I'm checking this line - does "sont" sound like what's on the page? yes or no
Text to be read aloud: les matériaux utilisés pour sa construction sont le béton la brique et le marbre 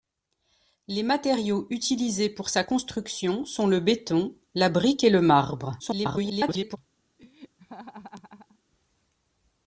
yes